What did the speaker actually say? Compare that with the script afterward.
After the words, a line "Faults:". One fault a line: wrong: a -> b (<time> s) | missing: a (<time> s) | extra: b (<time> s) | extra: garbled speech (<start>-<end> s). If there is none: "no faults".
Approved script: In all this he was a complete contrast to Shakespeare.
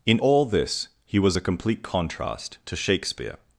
In all this he was a complete contrast to Shakespeare.
Faults:
no faults